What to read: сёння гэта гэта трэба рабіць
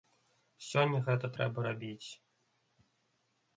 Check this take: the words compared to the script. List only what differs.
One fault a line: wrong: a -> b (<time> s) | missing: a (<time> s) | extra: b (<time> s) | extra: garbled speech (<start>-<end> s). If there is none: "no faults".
missing: гэта (1.3 s)